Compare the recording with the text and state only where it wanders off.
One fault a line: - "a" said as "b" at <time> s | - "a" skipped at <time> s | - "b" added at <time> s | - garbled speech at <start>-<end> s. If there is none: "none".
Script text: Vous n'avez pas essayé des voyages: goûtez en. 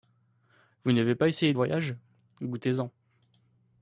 - "des" skipped at 1.5 s